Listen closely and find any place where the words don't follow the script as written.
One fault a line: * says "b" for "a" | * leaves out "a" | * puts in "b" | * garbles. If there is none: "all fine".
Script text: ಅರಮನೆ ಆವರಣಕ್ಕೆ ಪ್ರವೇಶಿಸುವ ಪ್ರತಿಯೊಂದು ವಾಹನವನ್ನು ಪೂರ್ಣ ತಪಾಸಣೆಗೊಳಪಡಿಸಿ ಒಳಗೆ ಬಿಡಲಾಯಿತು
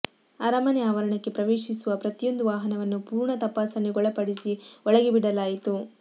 all fine